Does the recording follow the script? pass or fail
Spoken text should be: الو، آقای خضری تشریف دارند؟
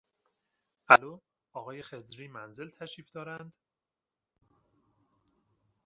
fail